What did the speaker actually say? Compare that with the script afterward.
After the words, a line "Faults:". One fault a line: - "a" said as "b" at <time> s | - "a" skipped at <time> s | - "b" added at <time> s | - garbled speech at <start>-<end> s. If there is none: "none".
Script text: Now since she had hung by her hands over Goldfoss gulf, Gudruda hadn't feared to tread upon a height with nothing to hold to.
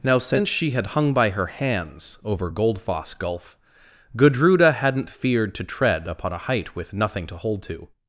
Now since she had hung by her hands over Goldfoss gulf, Gudruda hadn't feared to tread upon a height with nothing to hold to.
Faults:
none